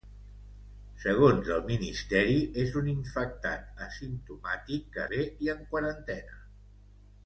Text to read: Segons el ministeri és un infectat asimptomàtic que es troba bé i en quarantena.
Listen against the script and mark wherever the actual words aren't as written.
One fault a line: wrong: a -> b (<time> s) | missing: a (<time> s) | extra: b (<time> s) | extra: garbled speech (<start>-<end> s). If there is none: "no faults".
missing: es troba (5.0 s)